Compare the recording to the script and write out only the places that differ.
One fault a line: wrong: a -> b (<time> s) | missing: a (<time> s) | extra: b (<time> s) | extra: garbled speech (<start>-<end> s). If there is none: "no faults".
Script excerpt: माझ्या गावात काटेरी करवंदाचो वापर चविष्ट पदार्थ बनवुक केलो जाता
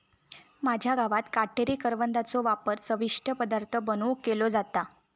no faults